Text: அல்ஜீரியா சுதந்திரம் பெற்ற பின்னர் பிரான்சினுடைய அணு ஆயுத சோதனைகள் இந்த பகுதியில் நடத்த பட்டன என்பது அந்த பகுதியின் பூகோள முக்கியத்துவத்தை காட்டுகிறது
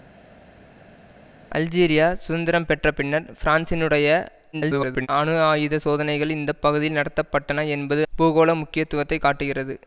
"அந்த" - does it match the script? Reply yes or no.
no